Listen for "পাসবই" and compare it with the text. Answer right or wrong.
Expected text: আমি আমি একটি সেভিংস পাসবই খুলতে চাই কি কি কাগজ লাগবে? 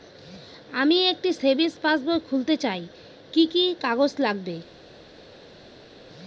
right